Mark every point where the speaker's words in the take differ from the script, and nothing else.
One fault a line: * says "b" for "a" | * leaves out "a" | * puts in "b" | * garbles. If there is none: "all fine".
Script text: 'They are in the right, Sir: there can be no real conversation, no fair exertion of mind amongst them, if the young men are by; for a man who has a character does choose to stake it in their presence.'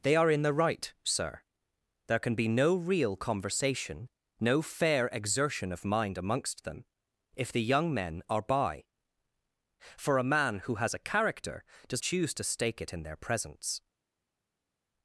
all fine